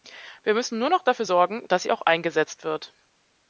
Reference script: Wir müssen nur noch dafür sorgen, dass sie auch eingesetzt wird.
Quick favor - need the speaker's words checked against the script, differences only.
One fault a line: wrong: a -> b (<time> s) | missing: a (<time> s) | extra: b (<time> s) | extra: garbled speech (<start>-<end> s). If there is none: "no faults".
no faults